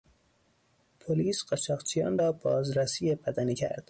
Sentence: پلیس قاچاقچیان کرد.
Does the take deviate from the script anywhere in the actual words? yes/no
yes